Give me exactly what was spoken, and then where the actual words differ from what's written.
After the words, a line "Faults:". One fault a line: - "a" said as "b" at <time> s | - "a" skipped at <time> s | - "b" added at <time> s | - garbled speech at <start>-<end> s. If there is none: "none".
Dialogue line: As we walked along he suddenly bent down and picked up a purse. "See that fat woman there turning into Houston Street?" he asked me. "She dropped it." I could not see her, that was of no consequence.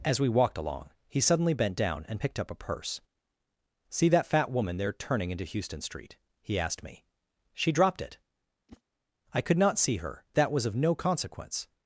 As we walked along he suddenly bent down and picked up a purse. "See that fat woman there turning into Houston Street?" he asked me. "She dropped it." I could not see her, that was of no consequence.
Faults:
none